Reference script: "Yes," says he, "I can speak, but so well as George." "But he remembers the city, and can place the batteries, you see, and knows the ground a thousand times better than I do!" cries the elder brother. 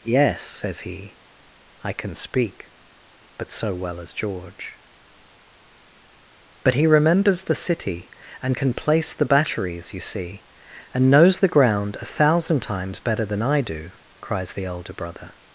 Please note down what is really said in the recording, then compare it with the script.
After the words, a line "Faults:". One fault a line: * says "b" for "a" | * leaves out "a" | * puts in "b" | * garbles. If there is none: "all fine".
"Yes," says he, "I can speak, but so well as George." "But he remembers the city, and can place the batteries, you see, and knows the ground a thousand times better than I do!" cries the elder brother.
Faults:
all fine